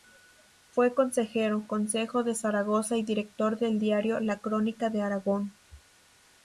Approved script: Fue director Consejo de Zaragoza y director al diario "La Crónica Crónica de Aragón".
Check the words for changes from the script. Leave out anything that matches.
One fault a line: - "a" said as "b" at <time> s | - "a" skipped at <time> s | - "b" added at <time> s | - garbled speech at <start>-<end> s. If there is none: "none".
- "director" said as "consejero" at 0.9 s
- "al" said as "del" at 3.6 s
- "Crónica" skipped at 4.9 s